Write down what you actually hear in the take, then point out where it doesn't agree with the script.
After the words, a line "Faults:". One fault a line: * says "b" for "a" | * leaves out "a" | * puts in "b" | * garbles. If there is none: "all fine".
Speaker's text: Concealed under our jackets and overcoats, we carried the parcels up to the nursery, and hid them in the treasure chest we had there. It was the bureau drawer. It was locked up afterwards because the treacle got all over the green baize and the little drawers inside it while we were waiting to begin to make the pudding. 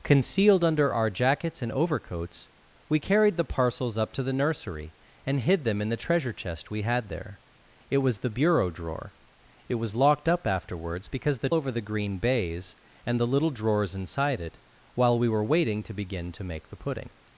Concealed under our jackets and overcoats, we carried the parcels up to the nursery, and hid them in the treasure chest we had there. It was the bureau drawer. It was locked up afterwards because the over the green baize and the little drawers inside it while we were waiting to begin to make the pudding.
Faults:
* leaves out "treacle got all"